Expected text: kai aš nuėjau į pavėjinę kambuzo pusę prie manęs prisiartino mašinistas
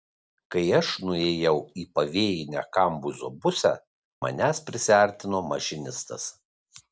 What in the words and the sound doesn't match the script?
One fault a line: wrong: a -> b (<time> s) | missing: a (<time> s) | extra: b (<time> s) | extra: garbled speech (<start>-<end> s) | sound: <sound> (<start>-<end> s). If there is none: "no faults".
missing: prie (3.8 s)